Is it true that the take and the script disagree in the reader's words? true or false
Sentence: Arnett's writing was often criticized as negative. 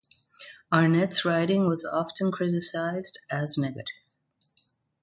false